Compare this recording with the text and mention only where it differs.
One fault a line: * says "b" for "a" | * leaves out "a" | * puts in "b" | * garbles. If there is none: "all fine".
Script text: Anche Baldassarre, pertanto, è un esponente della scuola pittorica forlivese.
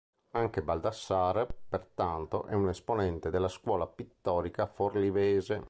all fine